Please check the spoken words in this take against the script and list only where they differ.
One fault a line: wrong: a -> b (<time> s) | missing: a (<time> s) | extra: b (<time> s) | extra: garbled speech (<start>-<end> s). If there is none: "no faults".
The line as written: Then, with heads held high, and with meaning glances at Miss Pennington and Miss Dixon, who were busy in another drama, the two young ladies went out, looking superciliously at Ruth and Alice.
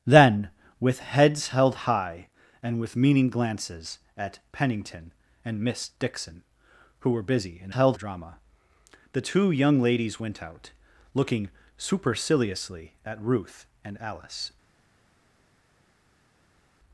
missing: Miss (4.4 s)
wrong: another -> held (7.7 s)